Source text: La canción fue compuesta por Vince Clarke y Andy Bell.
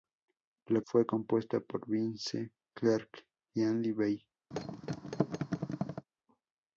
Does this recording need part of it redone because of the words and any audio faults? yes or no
yes